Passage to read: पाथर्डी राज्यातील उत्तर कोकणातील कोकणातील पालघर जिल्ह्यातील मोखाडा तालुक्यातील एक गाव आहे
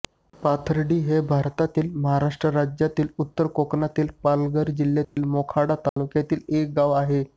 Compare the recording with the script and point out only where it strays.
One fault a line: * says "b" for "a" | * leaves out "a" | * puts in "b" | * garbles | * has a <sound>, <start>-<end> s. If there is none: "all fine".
* puts in "हे भारतातील महाराष्ट्र"
* leaves out "कोकणातील"
* has a dropout, 5.0-5.2 s
* has a dropout, 5.9-6.0 s